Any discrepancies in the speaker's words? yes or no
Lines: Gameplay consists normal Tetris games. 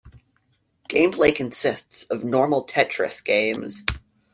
yes